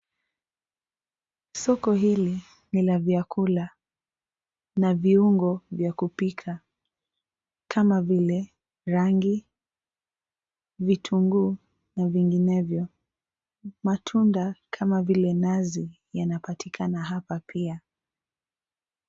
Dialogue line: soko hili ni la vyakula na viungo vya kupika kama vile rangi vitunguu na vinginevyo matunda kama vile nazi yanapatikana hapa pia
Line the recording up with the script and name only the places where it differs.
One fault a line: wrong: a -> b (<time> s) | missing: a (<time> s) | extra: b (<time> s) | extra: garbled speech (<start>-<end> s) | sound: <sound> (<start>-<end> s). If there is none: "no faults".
no faults